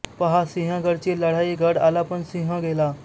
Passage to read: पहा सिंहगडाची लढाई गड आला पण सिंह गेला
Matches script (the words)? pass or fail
pass